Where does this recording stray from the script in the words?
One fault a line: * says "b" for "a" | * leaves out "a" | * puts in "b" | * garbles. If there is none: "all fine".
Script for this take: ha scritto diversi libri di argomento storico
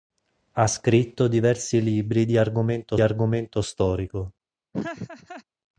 * puts in "argomento"